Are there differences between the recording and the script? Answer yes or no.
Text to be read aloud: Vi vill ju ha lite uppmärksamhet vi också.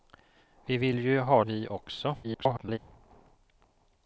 yes